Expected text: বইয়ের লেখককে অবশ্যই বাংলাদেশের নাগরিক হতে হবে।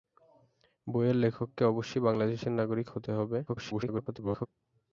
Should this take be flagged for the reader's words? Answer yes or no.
yes